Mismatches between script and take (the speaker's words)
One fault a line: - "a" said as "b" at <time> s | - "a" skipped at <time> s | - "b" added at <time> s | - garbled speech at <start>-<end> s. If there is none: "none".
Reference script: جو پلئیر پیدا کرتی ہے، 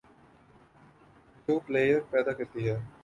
none